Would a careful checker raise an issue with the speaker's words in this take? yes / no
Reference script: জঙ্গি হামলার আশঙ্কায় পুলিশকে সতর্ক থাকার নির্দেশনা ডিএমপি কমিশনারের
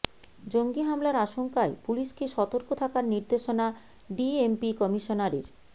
no